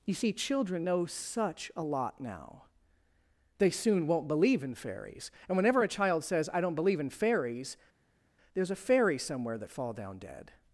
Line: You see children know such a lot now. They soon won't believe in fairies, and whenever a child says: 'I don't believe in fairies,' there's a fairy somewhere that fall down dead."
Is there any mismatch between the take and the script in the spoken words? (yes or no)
no